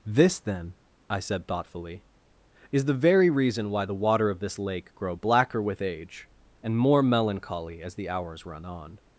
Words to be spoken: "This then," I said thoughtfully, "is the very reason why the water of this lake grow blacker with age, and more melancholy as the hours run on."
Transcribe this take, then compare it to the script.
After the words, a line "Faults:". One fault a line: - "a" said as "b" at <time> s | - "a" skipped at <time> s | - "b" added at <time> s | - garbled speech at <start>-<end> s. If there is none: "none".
"This then," I said thoughtfully, "is the very reason why the water of this lake grow blacker with age, and more melancholy as the hours run on."
Faults:
none